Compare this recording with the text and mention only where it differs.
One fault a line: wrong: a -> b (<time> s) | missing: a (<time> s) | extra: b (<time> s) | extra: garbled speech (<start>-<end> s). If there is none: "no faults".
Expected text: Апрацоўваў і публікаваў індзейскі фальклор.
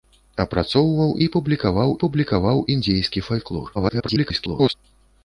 extra: публікаваў (2.0 s)
extra: garbled speech (3.7-4.7 s)